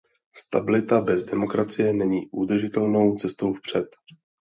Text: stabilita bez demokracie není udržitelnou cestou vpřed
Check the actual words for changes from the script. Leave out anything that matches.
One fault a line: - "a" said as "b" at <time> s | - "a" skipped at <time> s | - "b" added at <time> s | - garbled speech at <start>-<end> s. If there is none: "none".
none